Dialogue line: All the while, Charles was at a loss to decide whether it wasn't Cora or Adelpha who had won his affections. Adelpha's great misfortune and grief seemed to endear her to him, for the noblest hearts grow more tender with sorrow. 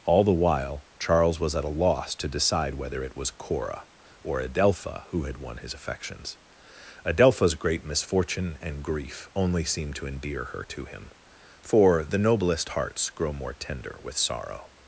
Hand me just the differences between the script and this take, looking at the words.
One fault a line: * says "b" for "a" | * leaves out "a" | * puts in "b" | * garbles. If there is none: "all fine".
* says "was" for "wasn't"
* puts in "only"